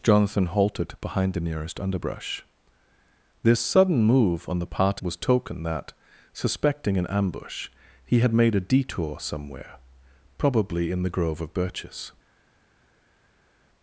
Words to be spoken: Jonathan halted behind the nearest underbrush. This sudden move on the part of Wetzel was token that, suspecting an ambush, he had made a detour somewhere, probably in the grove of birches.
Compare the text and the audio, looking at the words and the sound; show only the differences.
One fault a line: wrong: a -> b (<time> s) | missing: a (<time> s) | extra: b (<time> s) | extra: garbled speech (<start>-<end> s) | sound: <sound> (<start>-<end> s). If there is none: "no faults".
missing: of Wetzel (5.0 s)